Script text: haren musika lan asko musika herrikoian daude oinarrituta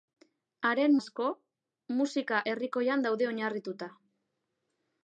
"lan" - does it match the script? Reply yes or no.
no